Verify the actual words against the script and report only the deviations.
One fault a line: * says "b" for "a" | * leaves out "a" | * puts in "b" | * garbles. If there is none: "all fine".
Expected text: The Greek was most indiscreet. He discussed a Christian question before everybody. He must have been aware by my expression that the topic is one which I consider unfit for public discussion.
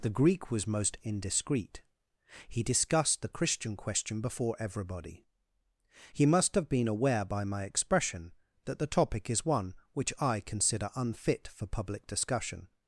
* says "the" for "a"